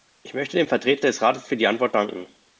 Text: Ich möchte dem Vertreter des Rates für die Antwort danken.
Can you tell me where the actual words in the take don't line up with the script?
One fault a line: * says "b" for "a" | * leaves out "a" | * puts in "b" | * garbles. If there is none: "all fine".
all fine